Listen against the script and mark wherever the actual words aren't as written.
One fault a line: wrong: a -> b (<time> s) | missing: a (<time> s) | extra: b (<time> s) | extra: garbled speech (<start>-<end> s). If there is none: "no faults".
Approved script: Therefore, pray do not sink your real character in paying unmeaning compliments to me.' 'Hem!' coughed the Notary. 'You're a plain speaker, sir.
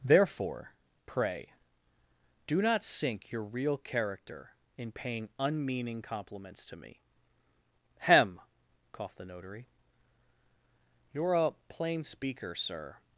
no faults